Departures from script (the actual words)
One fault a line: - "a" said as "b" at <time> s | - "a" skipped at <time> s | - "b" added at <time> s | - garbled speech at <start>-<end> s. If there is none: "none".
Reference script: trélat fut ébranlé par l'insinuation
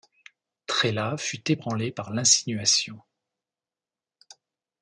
none